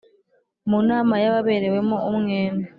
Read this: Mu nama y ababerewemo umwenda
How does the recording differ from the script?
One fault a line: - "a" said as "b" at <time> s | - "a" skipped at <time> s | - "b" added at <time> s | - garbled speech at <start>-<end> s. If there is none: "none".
none